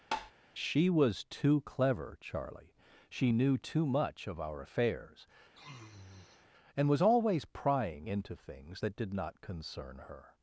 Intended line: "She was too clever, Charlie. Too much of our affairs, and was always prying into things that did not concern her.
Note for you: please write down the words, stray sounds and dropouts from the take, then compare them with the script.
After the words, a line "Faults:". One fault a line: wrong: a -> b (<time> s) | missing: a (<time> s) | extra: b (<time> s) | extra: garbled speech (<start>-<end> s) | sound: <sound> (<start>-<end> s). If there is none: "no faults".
"She was too clever, Charlie. She knew too much of our affairs, and was always prying into things that did not concern her.
Faults:
sound: tap (0.1-0.3 s)
extra: She knew (3.1 s)
sound: sniff (5.5-6.5 s)